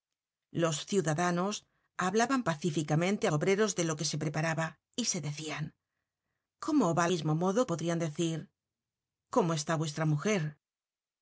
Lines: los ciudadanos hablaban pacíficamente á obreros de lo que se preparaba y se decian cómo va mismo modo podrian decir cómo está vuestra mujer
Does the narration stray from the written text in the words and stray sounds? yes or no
no